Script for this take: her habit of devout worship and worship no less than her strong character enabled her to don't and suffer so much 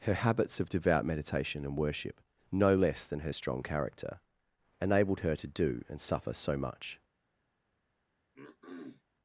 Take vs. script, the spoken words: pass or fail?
fail